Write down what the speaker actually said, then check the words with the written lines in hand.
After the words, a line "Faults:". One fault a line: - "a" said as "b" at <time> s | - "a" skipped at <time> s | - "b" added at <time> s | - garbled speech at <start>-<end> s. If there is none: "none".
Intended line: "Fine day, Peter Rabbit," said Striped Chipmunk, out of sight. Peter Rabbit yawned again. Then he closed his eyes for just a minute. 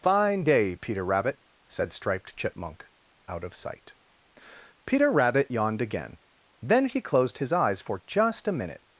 "Fine day, Peter Rabbit," said Striped Chipmunk, out of sight. Peter Rabbit yawned again. Then he closed his eyes for just a minute.
Faults:
none